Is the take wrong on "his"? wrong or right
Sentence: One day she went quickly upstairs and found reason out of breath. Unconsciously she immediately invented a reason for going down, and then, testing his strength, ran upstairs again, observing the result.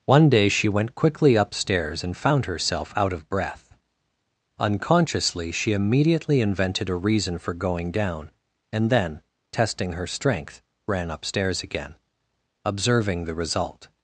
wrong